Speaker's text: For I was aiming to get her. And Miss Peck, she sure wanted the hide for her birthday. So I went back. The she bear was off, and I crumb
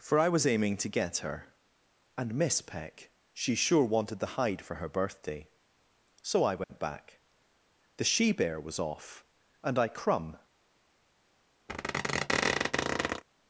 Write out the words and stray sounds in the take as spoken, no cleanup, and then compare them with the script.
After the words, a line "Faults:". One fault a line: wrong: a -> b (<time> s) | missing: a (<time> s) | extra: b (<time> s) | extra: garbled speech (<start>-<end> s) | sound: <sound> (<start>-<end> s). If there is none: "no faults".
For I was aiming to get her. And Miss Peck, she sure wanted the hide for her birthday. So I went back. The she bear was off, and I crumb
Faults:
sound: dropout (6.6-6.7 s)
sound: squeak (11.7-13.2 s)